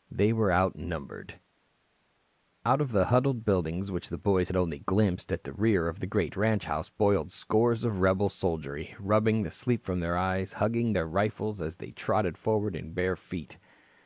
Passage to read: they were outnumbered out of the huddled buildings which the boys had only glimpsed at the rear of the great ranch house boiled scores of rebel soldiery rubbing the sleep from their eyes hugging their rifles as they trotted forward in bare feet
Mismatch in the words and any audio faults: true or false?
false